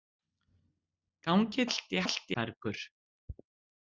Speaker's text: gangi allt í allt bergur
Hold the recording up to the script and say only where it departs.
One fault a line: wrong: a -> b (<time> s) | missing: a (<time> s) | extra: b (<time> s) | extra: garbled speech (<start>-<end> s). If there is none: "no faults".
no faults